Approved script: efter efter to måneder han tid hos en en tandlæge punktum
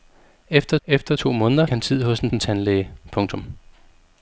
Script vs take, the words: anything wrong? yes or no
no